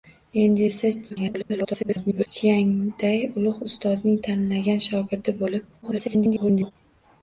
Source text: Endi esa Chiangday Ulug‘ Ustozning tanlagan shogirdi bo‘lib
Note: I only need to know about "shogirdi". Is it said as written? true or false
true